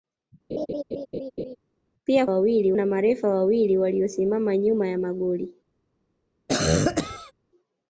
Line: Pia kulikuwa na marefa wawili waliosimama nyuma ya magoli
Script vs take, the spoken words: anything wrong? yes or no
yes